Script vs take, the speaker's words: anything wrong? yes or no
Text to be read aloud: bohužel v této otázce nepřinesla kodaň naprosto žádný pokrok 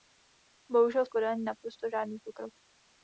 yes